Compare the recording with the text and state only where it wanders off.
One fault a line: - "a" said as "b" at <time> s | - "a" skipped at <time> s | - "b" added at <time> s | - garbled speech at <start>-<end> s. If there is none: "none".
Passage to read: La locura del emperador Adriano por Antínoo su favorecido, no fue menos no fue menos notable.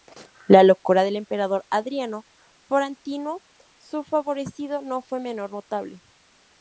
- "no fue menos" skipped at 5.5 s